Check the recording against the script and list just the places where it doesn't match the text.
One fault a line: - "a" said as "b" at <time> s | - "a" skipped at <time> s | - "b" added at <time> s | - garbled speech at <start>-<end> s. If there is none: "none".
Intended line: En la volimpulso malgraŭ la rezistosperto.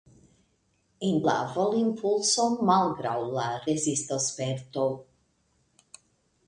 none